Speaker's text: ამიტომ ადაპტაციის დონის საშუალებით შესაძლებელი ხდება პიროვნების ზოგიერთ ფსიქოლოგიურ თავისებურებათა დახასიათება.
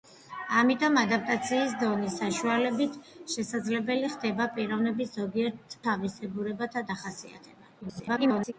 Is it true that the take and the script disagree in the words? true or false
true